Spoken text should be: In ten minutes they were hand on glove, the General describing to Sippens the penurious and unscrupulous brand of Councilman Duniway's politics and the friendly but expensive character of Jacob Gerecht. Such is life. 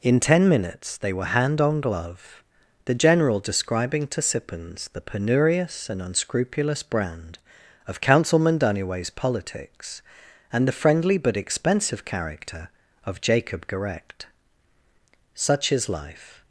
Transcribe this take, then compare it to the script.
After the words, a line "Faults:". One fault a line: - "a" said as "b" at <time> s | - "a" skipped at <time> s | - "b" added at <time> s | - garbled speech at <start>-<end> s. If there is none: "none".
In ten minutes they were hand on glove, the General describing to Sippens the penurious and unscrupulous brand of Councilman Duniway's politics and the friendly but expensive character of Jacob Gerecht. Such is life.
Faults:
none